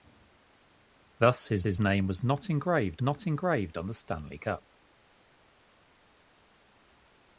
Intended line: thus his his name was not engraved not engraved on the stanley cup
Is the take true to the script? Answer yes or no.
yes